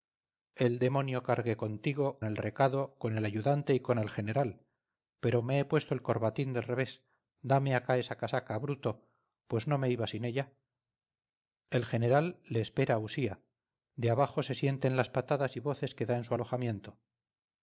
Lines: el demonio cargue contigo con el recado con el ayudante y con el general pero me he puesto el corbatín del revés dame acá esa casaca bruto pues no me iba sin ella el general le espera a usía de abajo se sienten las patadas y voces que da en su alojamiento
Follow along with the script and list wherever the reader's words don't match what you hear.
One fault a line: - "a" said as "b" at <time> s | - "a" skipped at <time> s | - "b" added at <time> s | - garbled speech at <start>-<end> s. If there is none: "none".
- "con" skipped at 2.2 s